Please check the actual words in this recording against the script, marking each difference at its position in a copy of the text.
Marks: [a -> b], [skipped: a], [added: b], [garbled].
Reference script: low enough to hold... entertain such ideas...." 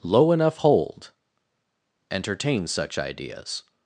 low enough [skipped: to] hold... entertain such ideas...."